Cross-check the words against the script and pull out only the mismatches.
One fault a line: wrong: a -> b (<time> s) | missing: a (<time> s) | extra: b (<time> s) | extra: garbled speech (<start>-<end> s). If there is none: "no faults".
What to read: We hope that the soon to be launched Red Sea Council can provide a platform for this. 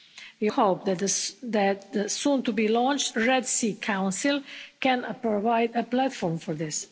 no faults